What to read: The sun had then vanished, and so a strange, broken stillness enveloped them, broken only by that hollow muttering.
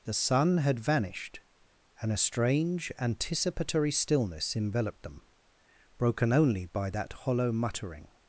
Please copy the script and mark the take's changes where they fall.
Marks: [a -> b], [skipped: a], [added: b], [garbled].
The sun had [skipped: then] vanished, and [skipped: so] a strange, [broken -> anticipatory] stillness enveloped them, broken only by that hollow muttering.